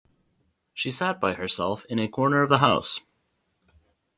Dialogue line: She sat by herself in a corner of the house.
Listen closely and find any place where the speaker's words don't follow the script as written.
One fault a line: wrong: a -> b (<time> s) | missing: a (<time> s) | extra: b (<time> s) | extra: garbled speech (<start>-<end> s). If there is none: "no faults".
no faults